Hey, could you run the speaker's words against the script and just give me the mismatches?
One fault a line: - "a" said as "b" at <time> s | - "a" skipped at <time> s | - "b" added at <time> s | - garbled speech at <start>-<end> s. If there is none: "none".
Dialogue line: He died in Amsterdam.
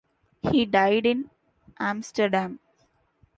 none